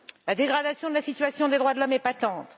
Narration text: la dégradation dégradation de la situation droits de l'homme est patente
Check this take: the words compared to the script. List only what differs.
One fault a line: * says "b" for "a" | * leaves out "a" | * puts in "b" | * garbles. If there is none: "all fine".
* leaves out "dégradation"
* puts in "des"